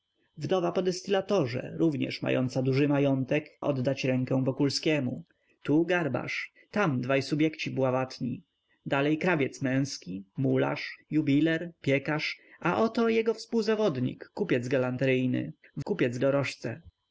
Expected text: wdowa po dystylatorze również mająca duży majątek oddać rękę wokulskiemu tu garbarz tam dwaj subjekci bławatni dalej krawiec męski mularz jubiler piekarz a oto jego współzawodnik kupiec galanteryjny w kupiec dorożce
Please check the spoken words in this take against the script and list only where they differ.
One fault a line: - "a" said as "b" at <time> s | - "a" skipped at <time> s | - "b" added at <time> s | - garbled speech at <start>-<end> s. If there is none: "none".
none